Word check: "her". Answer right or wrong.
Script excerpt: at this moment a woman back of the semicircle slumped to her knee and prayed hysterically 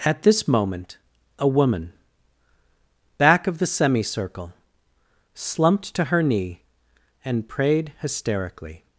right